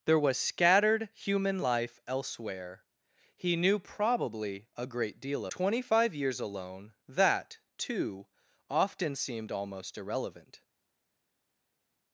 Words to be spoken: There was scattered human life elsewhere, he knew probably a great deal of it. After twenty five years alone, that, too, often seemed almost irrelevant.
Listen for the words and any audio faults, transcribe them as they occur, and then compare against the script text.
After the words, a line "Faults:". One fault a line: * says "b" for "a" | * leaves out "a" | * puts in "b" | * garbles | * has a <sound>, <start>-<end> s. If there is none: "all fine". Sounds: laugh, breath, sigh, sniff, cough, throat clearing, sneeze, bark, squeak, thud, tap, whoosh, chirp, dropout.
There was scattered human life elsewhere, he knew probably a great deal twenty five years alone, that, too, often seemed almost irrelevant.
Faults:
* leaves out "of it After"